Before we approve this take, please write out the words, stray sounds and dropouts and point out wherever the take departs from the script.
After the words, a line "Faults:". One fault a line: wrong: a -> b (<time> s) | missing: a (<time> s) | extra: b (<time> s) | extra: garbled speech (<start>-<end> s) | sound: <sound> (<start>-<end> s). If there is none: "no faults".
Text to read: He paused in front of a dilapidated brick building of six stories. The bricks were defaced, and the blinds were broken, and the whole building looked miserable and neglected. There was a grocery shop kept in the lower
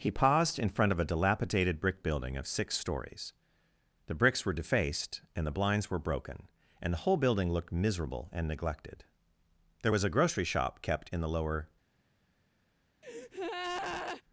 He paused in front of a dilapidated brick building of six stories. The bricks were defaced, and the blinds were broken, and the whole building looked miserable and neglected. There was a grocery shop kept in the lower
Faults:
sound: breath (13.0-14.2 s)